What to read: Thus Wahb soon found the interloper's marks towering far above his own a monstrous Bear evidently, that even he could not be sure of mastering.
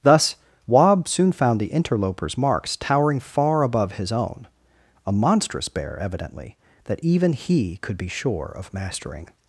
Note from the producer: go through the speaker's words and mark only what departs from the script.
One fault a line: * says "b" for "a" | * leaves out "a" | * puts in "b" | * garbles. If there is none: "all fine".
* leaves out "not"